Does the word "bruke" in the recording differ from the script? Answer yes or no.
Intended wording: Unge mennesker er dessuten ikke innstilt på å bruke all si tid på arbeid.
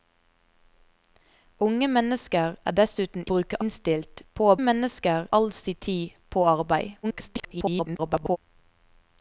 yes